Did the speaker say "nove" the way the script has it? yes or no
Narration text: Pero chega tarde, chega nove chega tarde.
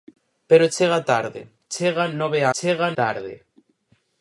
yes